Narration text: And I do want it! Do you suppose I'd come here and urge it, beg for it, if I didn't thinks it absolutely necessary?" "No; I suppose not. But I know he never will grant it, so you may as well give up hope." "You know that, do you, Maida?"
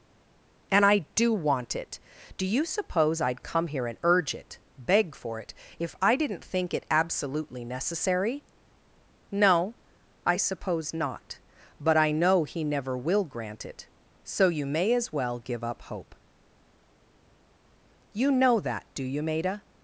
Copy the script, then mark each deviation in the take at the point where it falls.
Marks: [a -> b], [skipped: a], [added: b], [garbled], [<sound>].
And I do want it! Do you suppose I'd come here and urge it, beg for it, if I didn't [thinks -> think] it absolutely necessary?" "No; I suppose not. But I know he never will grant it, so you may as well give up hope." "You know that, do you, Maida?"